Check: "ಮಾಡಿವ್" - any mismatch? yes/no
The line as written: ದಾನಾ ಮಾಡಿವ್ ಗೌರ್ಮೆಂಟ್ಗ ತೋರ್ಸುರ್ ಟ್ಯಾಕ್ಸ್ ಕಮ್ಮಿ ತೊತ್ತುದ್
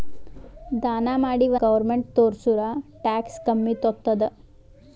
no